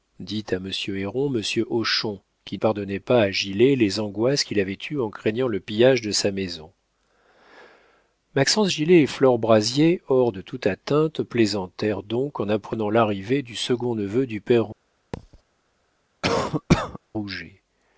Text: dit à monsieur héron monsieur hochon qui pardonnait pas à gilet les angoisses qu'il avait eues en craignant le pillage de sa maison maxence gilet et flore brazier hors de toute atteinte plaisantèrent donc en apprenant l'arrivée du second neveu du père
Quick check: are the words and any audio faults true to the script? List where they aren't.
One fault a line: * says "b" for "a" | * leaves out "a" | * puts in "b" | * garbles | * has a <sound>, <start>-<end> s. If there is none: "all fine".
* has a thud, 15.1-15.4 s
* has a cough, 16.2-17.0 s